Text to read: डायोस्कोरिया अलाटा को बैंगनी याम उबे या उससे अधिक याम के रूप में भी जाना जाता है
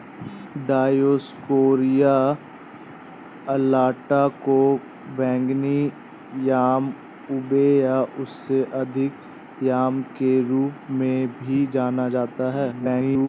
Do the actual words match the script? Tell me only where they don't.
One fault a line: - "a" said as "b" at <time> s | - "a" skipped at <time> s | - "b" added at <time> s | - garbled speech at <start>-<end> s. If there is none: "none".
- garbled speech at 12.7-13.3 s